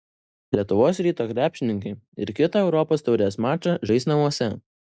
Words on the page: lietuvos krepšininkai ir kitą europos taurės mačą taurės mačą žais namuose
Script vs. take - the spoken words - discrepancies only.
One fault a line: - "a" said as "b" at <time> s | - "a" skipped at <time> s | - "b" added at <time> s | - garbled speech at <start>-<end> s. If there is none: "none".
- "ryto" added at 1.1 s
- "taurės mačą" skipped at 3.8 s